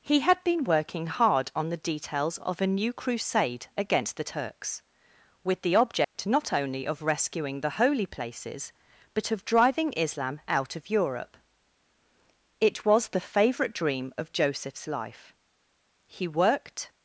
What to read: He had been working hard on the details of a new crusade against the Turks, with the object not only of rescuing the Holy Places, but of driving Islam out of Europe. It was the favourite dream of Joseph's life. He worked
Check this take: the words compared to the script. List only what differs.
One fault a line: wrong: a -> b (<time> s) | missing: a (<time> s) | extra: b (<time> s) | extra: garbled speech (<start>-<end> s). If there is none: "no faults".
no faults